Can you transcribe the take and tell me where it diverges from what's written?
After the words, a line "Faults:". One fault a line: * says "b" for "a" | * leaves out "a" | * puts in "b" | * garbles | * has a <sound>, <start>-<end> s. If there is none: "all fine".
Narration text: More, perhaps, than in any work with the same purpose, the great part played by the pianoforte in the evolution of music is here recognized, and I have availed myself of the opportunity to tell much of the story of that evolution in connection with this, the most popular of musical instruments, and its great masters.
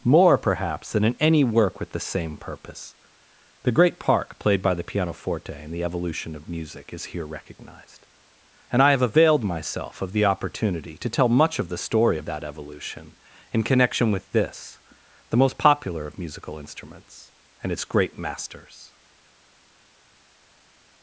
More, perhaps, than in any work with the same purpose, the great park played by the pianoforte in the evolution of music is here recognized, and I have availed myself of the opportunity to tell much of the story of that evolution in connection with this, the most popular of musical instruments, and its great masters.
Faults:
* says "park" for "part"